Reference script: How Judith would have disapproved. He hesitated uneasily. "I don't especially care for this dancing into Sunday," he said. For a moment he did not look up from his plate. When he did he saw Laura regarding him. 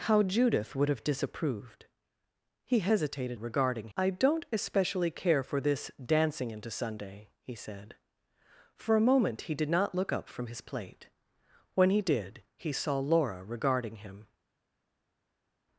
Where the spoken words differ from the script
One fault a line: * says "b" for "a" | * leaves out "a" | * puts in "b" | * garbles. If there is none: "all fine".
* says "regarding" for "uneasily"